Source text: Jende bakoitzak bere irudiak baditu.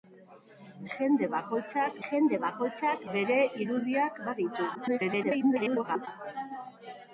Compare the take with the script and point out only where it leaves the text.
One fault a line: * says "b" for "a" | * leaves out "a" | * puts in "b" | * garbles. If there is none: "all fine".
* puts in "jende bakoitzak"
* garbles